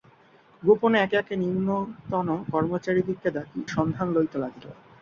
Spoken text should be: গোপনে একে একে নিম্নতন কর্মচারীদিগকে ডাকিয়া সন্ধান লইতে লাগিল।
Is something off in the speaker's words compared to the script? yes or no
yes